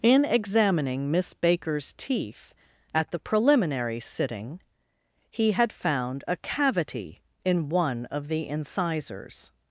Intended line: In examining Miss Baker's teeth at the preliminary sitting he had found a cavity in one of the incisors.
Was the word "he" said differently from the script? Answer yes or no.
no